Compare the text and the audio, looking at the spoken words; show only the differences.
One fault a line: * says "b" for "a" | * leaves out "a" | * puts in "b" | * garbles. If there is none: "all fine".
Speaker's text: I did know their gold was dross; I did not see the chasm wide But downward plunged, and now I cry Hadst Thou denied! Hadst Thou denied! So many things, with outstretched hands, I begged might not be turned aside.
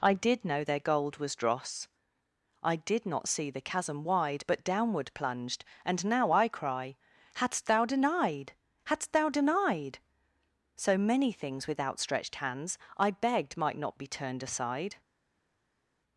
all fine